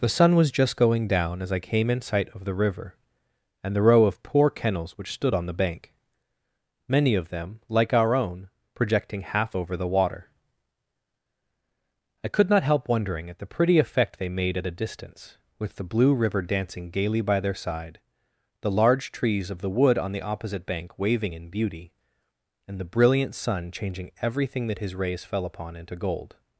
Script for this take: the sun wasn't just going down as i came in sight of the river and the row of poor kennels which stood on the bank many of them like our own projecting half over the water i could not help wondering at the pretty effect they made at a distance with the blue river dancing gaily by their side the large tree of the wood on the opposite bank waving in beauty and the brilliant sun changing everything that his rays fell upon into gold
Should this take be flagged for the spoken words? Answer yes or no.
yes